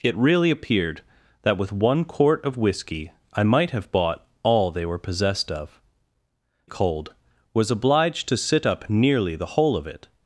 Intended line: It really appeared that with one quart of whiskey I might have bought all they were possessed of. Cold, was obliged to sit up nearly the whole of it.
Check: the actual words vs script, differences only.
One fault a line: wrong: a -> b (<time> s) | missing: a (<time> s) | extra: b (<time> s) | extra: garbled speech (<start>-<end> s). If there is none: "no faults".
no faults